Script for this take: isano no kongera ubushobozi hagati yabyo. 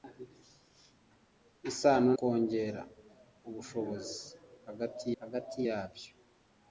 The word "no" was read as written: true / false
false